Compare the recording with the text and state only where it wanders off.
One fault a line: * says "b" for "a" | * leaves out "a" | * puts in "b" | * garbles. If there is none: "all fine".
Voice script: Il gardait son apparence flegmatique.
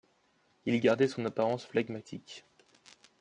all fine